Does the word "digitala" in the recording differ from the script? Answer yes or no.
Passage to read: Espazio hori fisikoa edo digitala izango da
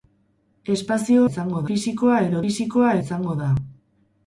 yes